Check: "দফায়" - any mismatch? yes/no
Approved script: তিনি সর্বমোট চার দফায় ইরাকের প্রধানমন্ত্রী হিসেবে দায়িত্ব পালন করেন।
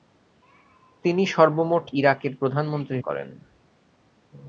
yes